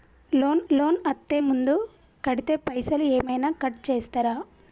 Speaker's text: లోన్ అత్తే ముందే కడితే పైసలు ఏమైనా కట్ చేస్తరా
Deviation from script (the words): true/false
true